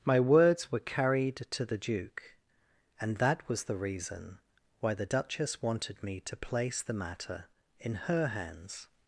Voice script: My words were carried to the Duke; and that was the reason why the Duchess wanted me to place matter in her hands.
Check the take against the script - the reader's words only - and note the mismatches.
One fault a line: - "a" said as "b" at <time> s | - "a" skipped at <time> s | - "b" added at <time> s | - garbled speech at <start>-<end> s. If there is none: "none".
- "the" added at 6.8 s